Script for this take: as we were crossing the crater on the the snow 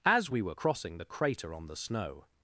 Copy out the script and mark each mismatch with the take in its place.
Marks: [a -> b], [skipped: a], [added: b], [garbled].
as we were crossing the crater on the [skipped: the] snow